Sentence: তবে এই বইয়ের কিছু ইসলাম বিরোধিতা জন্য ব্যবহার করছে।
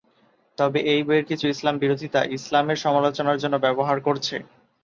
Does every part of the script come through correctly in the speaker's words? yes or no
no